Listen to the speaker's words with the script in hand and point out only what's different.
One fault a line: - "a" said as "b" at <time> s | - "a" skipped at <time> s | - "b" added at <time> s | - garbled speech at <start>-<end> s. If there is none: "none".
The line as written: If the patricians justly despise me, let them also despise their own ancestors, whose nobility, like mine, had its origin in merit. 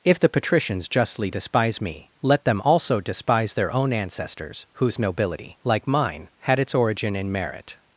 none